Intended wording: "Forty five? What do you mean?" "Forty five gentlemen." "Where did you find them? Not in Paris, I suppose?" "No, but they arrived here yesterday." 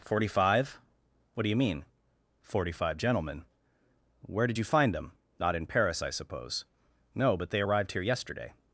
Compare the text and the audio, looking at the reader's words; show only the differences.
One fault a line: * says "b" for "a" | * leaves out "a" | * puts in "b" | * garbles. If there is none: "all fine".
all fine